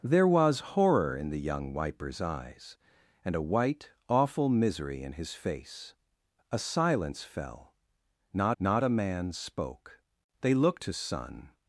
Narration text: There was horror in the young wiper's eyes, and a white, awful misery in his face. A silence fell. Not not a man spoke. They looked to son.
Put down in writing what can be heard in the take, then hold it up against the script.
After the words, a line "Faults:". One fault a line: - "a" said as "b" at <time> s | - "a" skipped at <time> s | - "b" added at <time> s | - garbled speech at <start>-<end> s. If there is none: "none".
There was horror in the young wiper's eyes, and a white, awful misery in his face. A silence fell. Not not a man spoke. They looked to son.
Faults:
none